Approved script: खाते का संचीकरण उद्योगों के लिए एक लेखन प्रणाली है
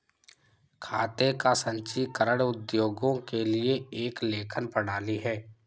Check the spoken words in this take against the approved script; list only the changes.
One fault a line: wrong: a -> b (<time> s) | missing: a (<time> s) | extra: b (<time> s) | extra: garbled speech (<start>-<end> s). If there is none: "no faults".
no faults